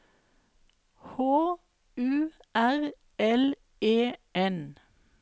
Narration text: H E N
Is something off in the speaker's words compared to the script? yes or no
yes